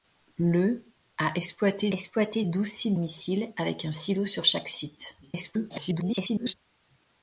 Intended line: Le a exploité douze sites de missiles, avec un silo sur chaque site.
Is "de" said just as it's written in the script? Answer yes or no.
no